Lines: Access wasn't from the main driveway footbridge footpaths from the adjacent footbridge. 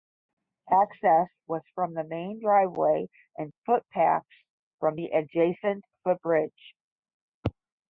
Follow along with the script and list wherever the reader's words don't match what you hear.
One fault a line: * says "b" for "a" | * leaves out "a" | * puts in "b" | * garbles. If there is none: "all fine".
* says "was" for "wasn't"
* says "and" for "footbridge"